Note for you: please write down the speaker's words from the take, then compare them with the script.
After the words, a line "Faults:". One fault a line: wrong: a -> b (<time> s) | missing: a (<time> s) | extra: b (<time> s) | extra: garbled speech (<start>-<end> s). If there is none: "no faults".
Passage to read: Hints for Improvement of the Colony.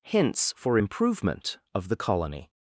Hints for Improvement of the Colony.
Faults:
no faults